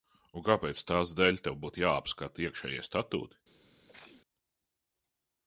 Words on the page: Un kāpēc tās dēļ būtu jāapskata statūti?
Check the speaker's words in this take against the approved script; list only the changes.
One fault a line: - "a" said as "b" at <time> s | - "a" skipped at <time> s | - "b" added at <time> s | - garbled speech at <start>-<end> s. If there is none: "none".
- "tev" added at 1.5 s
- "iekšējie" added at 2.5 s